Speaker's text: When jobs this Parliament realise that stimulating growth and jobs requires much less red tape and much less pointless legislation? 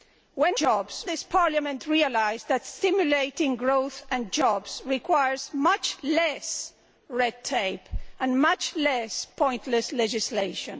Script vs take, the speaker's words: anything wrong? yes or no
no